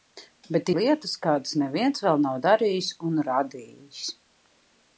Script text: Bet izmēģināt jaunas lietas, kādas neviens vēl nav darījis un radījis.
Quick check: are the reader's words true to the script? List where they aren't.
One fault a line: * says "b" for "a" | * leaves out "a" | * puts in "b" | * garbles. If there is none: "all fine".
* leaves out "izmēģināt jaunas"